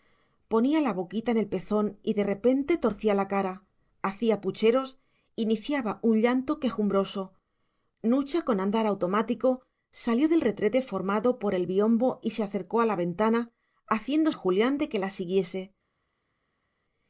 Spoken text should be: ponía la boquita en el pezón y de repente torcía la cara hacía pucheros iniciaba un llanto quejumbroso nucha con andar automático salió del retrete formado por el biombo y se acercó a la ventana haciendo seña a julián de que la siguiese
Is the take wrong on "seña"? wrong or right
wrong